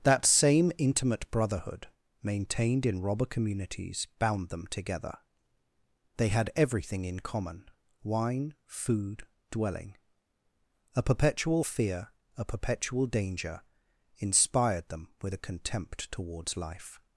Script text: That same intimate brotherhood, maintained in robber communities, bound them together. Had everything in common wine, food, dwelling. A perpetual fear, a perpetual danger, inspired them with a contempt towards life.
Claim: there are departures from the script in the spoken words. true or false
true